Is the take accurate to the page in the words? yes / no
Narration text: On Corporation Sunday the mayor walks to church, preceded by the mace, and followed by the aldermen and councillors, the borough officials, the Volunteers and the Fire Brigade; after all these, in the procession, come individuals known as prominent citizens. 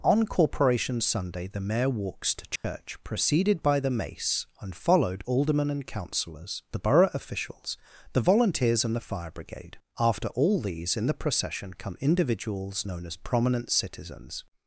no